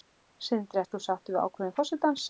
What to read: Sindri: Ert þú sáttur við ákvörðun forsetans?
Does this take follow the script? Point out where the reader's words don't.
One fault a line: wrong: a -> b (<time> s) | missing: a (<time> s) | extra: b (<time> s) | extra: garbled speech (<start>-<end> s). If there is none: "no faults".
no faults